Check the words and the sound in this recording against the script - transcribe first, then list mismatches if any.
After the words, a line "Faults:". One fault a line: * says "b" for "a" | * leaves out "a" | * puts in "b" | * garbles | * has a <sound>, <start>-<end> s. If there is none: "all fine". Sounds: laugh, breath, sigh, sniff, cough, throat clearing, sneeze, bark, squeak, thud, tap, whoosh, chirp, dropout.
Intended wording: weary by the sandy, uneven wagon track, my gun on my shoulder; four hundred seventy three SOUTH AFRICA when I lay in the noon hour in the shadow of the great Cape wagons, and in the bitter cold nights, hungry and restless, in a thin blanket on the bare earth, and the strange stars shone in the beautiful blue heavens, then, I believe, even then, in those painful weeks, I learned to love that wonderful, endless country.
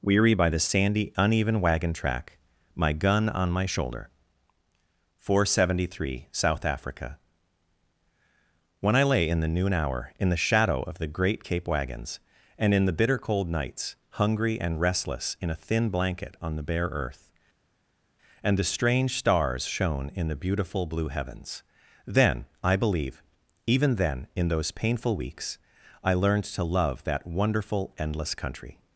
weary by the sandy, uneven wagon track, my gun on my shoulder; four hundred seventy three SOUTH AFRICA when I lay in the noon hour in the shadow of the great Cape wagons, and in the bitter cold nights, hungry and restless, in a thin blanket on the bare earth, and the strange stars shone in the beautiful blue heavens, then, I believe, even then, in those painful weeks, I learned to love that wonderful, endless country.
Faults:
all fine